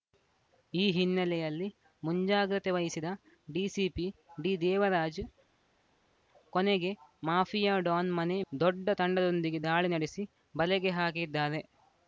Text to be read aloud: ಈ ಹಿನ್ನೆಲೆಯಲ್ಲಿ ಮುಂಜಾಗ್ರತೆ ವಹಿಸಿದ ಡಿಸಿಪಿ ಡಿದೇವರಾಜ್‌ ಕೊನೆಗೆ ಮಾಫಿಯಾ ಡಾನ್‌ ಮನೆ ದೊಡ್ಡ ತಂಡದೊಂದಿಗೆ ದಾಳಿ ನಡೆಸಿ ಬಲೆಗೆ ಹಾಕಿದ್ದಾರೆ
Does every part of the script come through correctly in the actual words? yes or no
yes